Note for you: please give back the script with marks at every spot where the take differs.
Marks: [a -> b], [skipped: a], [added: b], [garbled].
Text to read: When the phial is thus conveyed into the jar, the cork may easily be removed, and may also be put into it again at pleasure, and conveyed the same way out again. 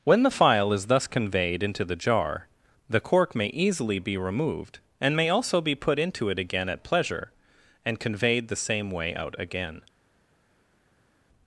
When the phial is thus conveyed into the jar, the cork may easily be removed, and may also be put into it again at pleasure, and conveyed the same way out again.